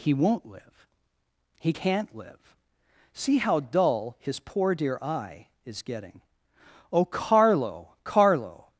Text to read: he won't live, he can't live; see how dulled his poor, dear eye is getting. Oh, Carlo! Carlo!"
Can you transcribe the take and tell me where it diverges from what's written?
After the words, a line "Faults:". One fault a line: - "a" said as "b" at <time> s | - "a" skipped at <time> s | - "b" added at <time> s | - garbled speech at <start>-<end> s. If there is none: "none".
he won't live, he can't live; see how dull his poor, dear eye is getting. Oh, Carlo! Carlo!"
Faults:
- "dulled" said as "dull" at 3.6 s